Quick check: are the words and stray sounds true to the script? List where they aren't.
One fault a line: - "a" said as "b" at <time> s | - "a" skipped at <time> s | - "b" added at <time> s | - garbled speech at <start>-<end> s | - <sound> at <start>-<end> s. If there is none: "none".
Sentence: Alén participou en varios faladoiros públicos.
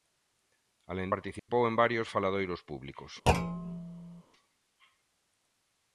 - dropout at 1.4-1.5 s
- thud at 3.3-4.2 s